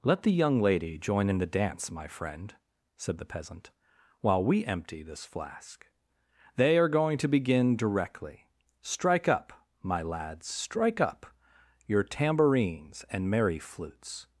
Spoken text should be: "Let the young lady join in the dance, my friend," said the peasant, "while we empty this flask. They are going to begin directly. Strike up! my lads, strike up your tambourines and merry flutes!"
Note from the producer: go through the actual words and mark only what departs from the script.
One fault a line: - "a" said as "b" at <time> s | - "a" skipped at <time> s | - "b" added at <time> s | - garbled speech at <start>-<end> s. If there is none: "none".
none